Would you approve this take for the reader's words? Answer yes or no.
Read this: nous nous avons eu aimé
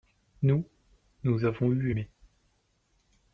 yes